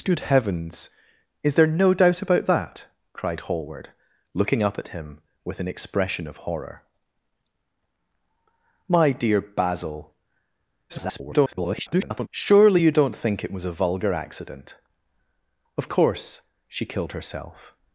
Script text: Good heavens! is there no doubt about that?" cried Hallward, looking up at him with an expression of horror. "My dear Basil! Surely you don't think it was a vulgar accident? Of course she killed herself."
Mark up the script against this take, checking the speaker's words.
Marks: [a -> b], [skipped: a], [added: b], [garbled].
Good heavens! is there no doubt about that?" cried Hallward, looking up at him with an expression of horror. "My dear Basil! [garbled] Surely you don't think it was a vulgar accident? Of course she killed herself."